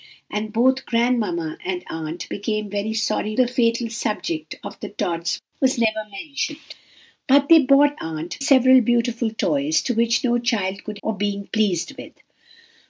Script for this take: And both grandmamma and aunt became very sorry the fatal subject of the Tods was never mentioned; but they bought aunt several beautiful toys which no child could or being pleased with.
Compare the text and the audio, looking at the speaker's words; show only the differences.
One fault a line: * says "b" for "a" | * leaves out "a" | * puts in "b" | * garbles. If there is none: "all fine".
all fine